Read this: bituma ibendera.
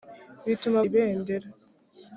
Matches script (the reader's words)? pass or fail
pass